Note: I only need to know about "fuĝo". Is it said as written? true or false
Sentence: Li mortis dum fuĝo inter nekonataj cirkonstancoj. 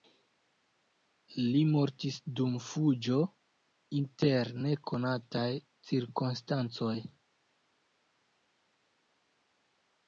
true